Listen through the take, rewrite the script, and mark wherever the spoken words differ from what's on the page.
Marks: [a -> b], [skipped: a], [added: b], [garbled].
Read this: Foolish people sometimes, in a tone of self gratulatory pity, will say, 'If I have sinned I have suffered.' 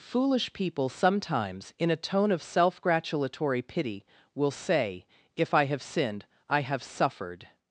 Foolish people sometimes, in a tone of self gratulatory pity, will say, 'If I have sinned I have suffered.'